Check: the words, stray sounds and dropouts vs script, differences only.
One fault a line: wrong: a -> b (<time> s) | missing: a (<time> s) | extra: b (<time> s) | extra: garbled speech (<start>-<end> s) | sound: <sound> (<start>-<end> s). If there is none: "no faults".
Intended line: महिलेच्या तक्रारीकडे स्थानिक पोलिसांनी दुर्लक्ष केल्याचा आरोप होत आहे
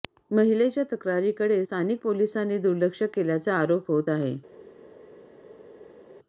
no faults